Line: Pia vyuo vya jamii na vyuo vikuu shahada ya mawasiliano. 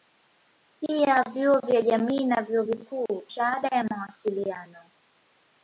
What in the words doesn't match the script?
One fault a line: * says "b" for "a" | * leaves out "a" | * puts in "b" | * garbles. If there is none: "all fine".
all fine